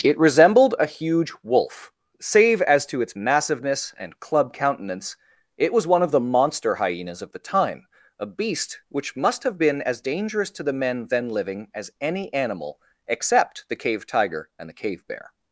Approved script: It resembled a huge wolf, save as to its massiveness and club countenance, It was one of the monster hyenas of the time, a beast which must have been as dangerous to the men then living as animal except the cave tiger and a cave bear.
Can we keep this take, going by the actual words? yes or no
no